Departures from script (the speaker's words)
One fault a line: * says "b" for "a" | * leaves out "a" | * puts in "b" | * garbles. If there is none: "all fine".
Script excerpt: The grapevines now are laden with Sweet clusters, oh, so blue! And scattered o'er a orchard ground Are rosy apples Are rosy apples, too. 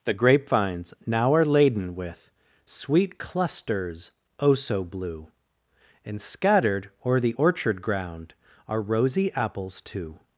* says "the" for "a"
* leaves out "Are rosy apples"